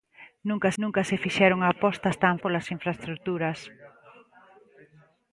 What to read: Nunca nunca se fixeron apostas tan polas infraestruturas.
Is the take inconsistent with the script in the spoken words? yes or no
no